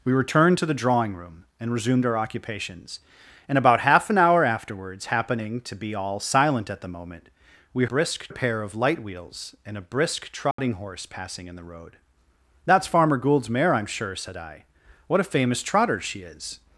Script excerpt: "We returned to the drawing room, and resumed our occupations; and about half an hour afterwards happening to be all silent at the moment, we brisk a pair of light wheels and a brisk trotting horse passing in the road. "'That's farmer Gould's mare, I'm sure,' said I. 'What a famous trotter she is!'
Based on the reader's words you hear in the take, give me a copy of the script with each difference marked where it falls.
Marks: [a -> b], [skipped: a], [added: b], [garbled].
"We returned to the drawing room, and resumed our occupations; and about half an hour afterwards happening to be all silent at the moment, we brisk a pair of light wheels and a brisk trotting horse passing in the road. "'That's farmer Gould's mare, I'm sure,' said I. 'What a famous trotter she is!'